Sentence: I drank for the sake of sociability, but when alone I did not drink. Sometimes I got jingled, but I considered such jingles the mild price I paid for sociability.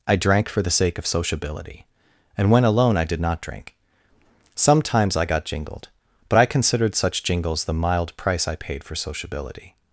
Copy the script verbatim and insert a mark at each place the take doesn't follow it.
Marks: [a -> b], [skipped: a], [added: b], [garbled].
I drank for the sake of sociability, [but -> and] when alone I did not drink. Sometimes I got jingled, but I considered such jingles the mild price I paid for sociability.